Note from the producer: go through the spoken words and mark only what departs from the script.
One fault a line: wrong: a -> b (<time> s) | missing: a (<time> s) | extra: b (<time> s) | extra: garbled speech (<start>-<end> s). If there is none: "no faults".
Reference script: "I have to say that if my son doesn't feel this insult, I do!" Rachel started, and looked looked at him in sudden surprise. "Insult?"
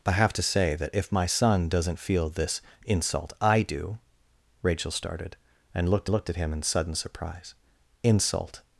no faults